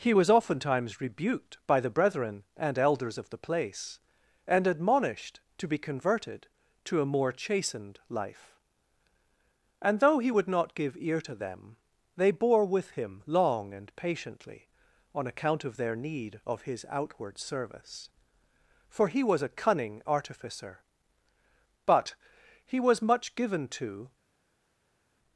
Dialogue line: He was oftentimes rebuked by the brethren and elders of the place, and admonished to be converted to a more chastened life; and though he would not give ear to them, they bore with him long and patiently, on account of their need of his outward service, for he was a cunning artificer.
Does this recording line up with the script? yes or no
no